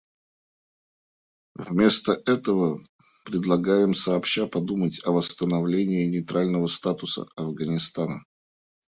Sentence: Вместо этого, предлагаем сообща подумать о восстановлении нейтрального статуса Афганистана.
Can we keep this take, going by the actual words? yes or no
yes